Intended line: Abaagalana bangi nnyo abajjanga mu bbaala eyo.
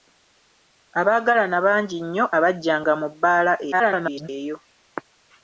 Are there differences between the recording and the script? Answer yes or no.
yes